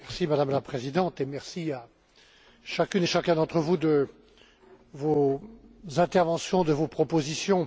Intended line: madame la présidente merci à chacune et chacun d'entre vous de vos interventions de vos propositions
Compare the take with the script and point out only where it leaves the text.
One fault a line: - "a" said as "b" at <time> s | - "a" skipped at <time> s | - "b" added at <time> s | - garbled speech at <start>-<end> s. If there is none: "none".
none